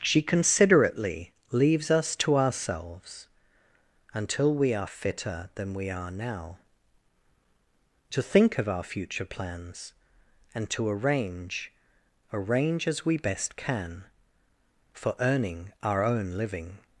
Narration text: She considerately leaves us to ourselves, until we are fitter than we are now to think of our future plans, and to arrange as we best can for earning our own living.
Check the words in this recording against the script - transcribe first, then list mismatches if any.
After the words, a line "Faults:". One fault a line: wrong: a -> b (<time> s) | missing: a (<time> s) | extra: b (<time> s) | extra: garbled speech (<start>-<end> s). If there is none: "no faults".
She considerately leaves us to ourselves, until we are fitter than we are now to think of our future plans, and to arrange arrange as we best can for earning our own living.
Faults:
extra: arrange (12.3 s)